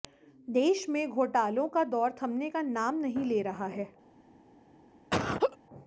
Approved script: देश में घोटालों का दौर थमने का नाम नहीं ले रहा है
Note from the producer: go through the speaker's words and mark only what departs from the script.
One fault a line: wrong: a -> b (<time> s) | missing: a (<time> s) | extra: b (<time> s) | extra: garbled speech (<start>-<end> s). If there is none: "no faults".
no faults